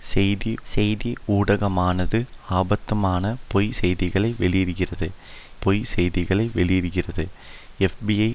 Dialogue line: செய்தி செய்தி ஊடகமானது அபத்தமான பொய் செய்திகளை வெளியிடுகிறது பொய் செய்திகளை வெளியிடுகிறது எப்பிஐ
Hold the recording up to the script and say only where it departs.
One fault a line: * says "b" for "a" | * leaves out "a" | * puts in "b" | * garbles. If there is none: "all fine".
all fine